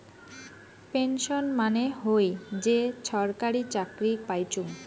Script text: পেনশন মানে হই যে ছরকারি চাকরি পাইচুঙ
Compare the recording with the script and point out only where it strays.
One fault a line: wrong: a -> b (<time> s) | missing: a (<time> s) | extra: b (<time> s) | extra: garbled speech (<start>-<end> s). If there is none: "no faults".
no faults